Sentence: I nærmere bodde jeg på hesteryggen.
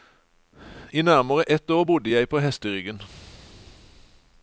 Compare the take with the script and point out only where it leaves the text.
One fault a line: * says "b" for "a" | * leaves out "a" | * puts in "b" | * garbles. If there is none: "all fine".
* puts in "ett år"